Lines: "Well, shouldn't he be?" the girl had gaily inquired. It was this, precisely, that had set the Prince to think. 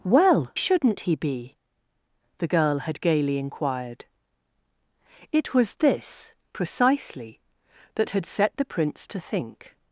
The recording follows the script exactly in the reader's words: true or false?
true